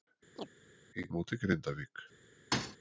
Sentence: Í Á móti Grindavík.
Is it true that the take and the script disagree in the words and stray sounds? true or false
true